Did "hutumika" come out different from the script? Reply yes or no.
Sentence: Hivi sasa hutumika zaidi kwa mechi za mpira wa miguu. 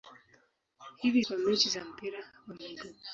yes